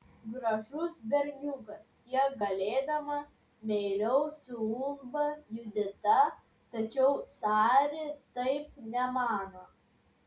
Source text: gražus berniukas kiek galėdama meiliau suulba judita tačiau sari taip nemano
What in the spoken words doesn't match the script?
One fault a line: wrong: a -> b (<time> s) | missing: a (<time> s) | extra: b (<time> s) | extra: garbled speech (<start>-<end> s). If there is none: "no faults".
no faults